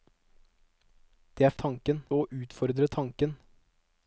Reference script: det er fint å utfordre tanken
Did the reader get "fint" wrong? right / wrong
wrong